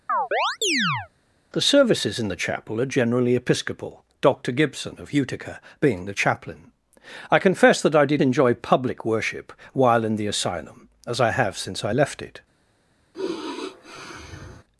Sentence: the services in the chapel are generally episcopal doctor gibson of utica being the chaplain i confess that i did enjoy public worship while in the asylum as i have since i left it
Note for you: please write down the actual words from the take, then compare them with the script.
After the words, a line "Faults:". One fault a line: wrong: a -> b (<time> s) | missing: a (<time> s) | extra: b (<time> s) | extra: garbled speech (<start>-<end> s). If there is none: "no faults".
the services in the chapel are generally episcopal doctor gibson of utica being the chaplain i confess that i did enjoy public worship while in the asylum as i have since i left it
Faults:
no faults